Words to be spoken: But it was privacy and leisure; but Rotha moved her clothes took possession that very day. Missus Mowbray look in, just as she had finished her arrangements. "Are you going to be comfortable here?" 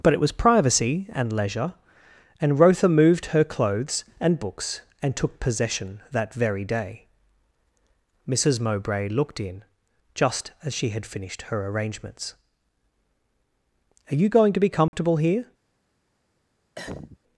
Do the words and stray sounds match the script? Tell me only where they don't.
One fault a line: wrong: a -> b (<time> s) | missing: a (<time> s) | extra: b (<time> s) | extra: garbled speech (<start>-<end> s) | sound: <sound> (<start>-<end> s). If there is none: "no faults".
wrong: but -> and (2.4 s)
extra: and books and (4.2 s)
wrong: look -> looked (9.1 s)
sound: dropout (14.9-14.9 s)
sound: cough (16.7-17.2 s)